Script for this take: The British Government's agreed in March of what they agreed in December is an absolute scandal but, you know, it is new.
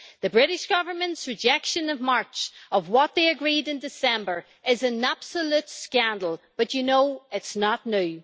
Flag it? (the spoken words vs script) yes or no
yes